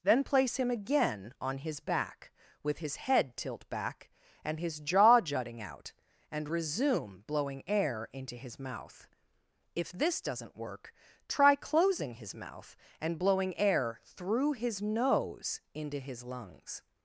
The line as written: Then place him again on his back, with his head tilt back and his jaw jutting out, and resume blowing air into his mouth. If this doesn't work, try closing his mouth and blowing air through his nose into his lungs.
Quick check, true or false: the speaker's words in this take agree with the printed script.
true